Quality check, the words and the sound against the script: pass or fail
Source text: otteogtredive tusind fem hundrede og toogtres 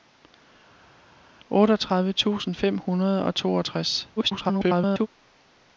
fail